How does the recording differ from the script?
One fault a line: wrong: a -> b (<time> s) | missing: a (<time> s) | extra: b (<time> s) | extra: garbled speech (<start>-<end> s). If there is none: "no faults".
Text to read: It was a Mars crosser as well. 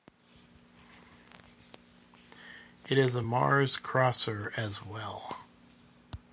wrong: was -> is (3.0 s)